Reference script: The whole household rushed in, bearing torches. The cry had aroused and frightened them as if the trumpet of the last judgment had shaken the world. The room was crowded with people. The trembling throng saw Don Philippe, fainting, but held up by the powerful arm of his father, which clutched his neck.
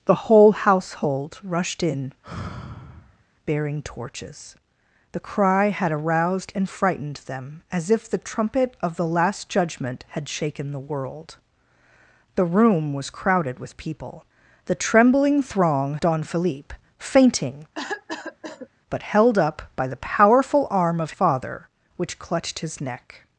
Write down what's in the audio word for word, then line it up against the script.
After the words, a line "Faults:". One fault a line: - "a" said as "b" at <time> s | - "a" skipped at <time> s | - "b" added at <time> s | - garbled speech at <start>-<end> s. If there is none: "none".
The whole household rushed in, bearing torches. The cry had aroused and frightened them as if the trumpet of the last judgment had shaken the world. The room was crowded with people. The trembling throng Don Philippe, fainting, but held up by the powerful arm of father, which clutched his neck.
Faults:
- "saw" skipped at 16.0 s
- "his" skipped at 21.1 s